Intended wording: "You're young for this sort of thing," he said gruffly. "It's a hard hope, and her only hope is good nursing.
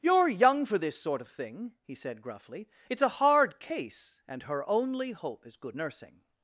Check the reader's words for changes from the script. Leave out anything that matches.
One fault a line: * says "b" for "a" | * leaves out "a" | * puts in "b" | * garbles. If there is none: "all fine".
* says "case" for "hope"